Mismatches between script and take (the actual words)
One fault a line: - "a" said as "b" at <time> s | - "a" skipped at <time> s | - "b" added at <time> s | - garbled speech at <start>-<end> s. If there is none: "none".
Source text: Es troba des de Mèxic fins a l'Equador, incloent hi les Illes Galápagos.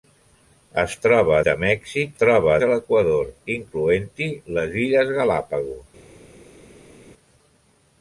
- "des" skipped at 1.4 s
- "fins" said as "troba" at 2.2 s